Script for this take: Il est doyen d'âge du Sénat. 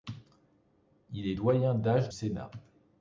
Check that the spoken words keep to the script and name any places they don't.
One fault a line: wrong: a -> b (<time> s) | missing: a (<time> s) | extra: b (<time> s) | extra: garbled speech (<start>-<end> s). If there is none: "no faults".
missing: du (2.1 s)